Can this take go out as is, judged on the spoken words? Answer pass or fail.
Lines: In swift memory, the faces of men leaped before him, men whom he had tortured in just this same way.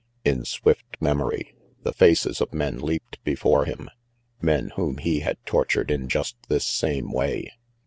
pass